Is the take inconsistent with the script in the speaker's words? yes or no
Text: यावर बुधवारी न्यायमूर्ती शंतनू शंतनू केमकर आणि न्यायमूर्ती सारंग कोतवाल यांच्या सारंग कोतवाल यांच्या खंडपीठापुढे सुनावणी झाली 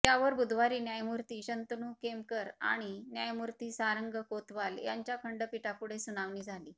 yes